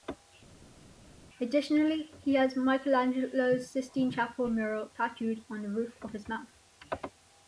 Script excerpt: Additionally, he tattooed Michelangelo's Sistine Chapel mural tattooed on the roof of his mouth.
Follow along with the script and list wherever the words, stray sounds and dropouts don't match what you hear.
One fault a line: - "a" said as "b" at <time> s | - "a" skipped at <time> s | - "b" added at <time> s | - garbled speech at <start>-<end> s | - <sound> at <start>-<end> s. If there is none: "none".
- "tattooed" said as "has" at 2.3 s